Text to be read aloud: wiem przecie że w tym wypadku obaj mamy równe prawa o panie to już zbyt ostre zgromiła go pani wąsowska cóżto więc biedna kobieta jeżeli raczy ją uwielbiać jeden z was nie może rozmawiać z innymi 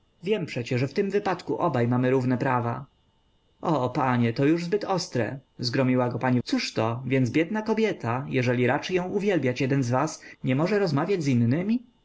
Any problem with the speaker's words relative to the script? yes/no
yes